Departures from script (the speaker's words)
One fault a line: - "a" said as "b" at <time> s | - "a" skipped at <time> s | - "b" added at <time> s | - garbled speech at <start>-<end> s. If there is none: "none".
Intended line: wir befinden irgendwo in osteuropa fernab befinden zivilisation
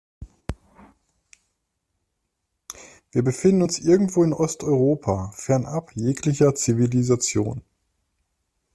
- "uns" added at 3.6 s
- "befinden" said as "jeglicher" at 5.9 s